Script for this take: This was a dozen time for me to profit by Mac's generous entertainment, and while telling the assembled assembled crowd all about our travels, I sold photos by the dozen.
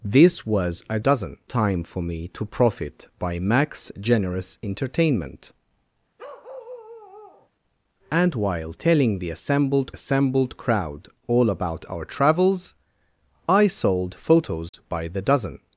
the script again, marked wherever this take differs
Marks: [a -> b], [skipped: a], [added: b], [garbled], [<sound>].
This was a dozen time for me to profit by Mac's generous entertainment, [bark] and while telling the assembled assembled crowd all about our travels, I sold photos [dropout] by the dozen.